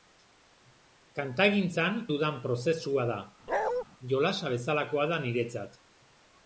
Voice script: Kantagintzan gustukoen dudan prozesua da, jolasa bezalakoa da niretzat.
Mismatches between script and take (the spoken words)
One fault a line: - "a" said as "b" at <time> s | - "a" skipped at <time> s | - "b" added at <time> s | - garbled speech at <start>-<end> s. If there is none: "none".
- "gustukoen" skipped at 2.0 s